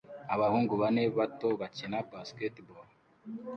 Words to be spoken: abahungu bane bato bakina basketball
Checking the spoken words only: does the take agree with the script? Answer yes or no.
yes